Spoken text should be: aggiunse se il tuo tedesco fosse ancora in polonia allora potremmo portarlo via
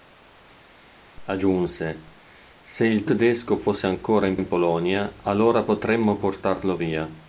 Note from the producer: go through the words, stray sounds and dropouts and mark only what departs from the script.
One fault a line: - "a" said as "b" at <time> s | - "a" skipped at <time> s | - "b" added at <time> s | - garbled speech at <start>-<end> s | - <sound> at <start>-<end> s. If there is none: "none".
- "tuo" skipped at 3.1 s
- "in" added at 4.4 s